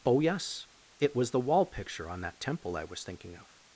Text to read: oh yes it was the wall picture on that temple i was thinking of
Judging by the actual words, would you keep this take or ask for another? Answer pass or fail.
pass